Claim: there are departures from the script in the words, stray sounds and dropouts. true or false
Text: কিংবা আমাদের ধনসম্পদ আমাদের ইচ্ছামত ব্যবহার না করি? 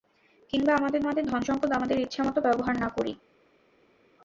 true